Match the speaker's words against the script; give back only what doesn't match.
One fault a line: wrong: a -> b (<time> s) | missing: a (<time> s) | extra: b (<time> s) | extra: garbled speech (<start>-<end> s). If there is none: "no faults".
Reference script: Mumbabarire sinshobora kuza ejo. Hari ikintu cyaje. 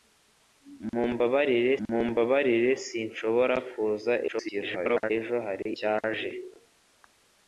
extra: mumbabarire (1.9 s)
extra: garbled speech (4.3-5.1 s)
missing: ikintu (5.7 s)